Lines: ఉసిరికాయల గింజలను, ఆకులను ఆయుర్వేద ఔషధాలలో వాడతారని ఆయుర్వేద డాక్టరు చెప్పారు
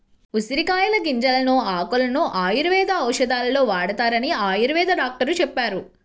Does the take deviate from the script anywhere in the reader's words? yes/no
no